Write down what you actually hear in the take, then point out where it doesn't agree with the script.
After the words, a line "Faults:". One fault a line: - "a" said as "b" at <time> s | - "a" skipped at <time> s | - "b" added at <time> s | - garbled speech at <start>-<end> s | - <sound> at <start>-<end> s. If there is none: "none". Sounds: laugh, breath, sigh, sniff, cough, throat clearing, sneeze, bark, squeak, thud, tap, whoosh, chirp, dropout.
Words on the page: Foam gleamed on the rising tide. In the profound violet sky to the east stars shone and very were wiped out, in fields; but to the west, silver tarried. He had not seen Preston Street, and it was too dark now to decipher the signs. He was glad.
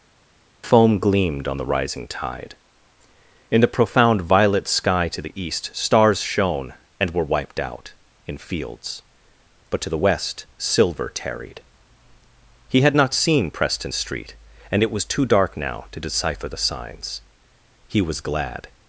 Foam gleamed on the rising tide. In the profound violet sky to the east stars shone and were wiped out, in fields; but to the west, silver tarried. He had not seen Preston Street, and it was too dark now to decipher the signs. He was glad.
Faults:
- "very" skipped at 7.1 s